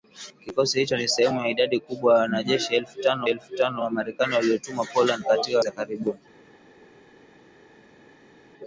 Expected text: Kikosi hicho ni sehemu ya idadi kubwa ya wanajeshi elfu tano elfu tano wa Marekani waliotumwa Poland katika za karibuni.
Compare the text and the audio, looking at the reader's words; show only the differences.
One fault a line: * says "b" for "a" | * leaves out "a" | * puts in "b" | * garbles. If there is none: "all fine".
all fine